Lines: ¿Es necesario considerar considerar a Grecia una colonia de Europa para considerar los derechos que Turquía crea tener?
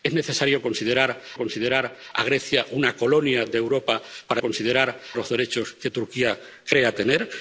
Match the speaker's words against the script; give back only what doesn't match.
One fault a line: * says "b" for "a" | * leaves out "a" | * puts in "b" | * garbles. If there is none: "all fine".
all fine